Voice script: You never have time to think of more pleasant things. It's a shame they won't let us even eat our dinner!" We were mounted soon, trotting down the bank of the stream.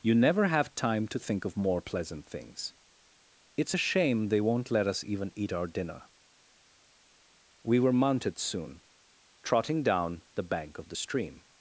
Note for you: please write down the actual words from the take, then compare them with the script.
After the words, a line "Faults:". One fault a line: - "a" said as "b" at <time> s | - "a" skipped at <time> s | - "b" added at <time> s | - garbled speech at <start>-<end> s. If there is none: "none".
You never have time to think of more pleasant things. It's a shame they won't let us even eat our dinner!" We were mounted soon, trotting down the bank of the stream.
Faults:
none